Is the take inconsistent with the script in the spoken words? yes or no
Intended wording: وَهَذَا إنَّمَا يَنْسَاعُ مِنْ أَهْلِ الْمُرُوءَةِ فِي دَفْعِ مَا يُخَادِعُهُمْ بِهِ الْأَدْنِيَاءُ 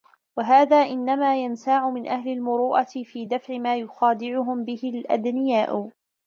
no